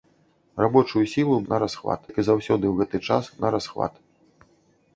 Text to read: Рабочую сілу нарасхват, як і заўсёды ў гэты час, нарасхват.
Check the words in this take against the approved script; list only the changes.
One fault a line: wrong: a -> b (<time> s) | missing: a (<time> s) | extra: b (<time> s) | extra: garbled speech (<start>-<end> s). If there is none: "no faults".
no faults